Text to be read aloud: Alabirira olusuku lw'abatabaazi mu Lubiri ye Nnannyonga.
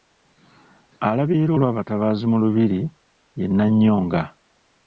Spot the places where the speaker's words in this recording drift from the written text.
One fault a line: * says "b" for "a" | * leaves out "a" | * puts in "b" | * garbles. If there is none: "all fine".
* leaves out "olusuku"